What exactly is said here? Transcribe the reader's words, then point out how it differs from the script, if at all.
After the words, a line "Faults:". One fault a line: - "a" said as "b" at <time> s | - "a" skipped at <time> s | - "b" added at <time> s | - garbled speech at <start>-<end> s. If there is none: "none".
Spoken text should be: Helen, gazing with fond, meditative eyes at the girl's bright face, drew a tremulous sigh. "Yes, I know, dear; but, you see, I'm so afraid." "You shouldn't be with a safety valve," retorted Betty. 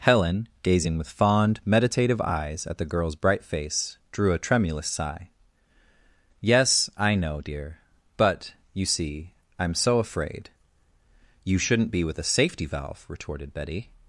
Helen, gazing with fond, meditative eyes at the girl's bright face, drew a tremulous sigh. "Yes, I know, dear; but, you see, I'm so afraid." "You shouldn't be with a safety valve," retorted Betty.
Faults:
none